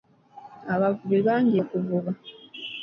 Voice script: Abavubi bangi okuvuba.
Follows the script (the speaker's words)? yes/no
yes